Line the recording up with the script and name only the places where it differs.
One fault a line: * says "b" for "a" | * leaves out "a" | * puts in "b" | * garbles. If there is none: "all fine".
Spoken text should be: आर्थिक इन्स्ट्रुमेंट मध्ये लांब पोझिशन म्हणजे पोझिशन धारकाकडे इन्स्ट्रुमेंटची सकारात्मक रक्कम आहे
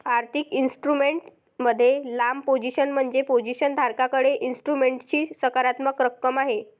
all fine